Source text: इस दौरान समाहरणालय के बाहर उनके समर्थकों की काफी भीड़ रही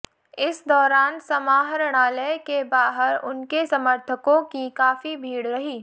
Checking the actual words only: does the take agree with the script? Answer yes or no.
yes